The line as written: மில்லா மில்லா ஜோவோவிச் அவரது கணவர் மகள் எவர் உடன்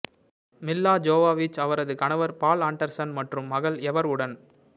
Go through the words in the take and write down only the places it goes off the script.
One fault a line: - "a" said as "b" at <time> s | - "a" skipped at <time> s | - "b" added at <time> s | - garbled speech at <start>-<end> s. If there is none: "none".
- "மில்லா" skipped at 0.9 s
- "பால் ஆண்டர்சன் மற்றும்" added at 2.4 s